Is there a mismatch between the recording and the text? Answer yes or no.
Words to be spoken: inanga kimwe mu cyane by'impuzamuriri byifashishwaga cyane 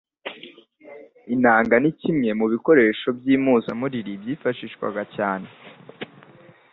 yes